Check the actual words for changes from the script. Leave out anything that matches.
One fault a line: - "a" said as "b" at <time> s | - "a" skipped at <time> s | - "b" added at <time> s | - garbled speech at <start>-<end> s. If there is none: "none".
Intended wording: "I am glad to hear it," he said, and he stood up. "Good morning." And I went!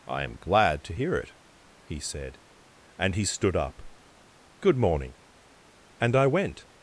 none